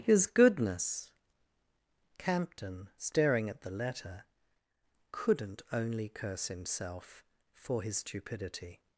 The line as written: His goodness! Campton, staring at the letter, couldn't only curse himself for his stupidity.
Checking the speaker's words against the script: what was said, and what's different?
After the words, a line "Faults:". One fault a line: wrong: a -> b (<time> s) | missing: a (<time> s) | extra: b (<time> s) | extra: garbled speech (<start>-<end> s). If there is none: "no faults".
His goodness! Campton, staring at the letter, couldn't only curse himself for his stupidity.
Faults:
no faults